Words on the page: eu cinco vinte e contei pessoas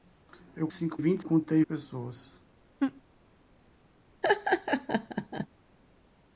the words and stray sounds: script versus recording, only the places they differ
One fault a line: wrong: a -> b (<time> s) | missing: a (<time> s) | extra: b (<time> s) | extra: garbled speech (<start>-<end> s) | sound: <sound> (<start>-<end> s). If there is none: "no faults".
sound: laugh (2.8-3.0 s)
sound: laugh (4.2-5.5 s)